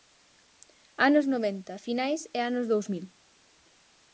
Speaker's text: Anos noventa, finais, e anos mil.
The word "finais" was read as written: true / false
true